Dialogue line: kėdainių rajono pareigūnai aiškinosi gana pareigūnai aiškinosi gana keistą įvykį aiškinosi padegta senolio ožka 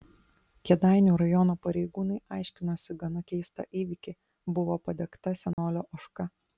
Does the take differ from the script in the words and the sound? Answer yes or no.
yes